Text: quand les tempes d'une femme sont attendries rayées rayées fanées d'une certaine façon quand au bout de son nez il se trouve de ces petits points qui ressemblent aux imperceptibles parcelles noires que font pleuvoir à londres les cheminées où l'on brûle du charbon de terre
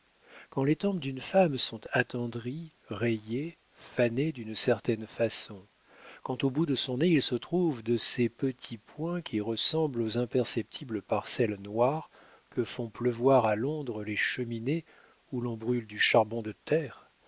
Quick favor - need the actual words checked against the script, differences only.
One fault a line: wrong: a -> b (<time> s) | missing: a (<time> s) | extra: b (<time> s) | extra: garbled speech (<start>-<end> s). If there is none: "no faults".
missing: rayées (3.6 s)